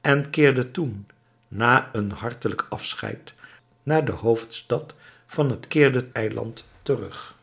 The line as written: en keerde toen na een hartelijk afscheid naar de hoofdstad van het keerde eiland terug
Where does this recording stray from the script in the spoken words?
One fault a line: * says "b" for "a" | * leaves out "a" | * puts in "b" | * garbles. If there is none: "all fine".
all fine